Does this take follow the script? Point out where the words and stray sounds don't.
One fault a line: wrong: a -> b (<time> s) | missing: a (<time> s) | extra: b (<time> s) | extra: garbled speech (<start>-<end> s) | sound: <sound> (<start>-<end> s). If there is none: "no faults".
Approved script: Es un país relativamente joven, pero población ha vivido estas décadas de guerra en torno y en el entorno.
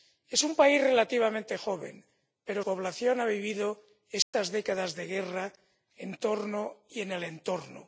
sound: dropout (4.2-4.3 s)